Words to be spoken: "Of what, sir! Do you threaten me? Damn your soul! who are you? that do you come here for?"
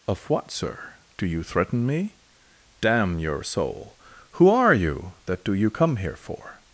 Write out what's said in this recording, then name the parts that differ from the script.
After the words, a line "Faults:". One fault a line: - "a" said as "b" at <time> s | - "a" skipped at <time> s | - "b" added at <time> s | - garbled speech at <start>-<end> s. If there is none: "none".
"Of what, sir! Do you threaten me? Damn your soul! who are you? that do you come here for?"
Faults:
none